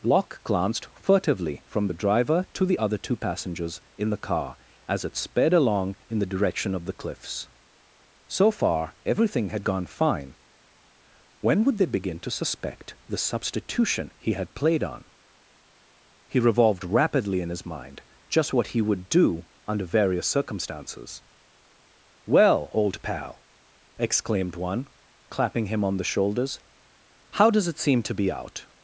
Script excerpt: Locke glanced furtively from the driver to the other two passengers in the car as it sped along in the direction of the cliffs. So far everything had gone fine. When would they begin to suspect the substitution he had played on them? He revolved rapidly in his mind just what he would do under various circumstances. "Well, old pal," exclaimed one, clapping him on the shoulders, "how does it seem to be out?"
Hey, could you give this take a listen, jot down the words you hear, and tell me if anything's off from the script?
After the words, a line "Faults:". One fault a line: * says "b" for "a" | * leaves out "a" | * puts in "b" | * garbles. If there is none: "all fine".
Locke glanced furtively from the driver to the other two passengers in the car as it sped along in the direction of the cliffs. So far everything had gone fine. When would they begin to suspect the substitution he had played on? He revolved rapidly in his mind just what he would do under various circumstances. "Well, old pal," exclaimed one, clapping him on the shoulders, "how does it seem to be out?"
Faults:
* leaves out "them"